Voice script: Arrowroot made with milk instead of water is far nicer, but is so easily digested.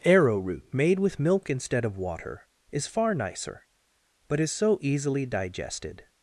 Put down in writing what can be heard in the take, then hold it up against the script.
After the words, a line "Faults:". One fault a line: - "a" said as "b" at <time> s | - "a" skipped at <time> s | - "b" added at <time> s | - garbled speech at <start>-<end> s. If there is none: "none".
Arrowroot made with milk instead of water is far nicer, but is so easily digested.
Faults:
none